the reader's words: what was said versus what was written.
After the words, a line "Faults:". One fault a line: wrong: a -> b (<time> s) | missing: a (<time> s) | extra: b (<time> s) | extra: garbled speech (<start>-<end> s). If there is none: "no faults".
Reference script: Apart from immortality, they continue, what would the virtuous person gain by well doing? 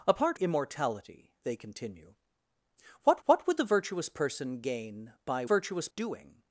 Apart immortality, they continue, what what would the virtuous person gain by virtuous doing?
Faults:
missing: from (0.4 s)
extra: what (3.2 s)
wrong: well -> virtuous (5.4 s)